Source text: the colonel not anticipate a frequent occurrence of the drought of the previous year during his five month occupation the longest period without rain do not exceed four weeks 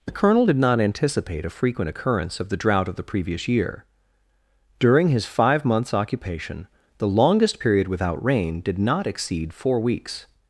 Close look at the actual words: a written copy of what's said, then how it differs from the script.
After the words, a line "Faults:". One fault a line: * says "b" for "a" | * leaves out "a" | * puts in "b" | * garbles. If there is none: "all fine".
the colonel did not anticipate a frequent occurrence of the drought of the previous year during his five months occupation the longest period without rain did not exceed four weeks
Faults:
* puts in "did"
* says "months" for "month"
* says "did" for "do"